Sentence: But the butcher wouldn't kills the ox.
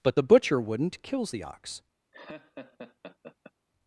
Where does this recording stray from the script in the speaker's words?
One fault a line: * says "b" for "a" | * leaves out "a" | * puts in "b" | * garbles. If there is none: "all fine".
all fine